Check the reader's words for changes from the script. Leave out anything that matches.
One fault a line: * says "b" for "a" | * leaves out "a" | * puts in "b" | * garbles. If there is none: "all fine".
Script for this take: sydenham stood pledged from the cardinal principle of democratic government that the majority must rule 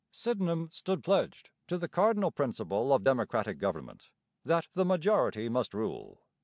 * says "to" for "from"